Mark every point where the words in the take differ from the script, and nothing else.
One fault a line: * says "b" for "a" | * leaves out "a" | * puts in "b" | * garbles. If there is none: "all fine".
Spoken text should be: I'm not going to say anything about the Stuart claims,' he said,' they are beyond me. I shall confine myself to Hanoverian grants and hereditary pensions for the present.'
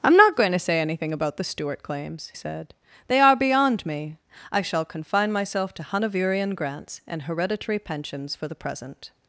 * leaves out "he"